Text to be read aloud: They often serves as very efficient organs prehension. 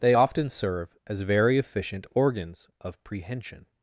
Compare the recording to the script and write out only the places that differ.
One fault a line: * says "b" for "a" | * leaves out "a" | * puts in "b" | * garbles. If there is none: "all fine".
* says "serve" for "serves"
* puts in "of"